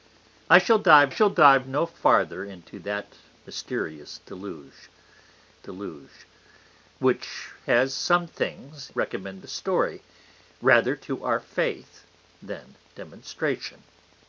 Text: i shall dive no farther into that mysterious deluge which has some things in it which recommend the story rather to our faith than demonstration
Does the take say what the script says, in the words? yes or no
no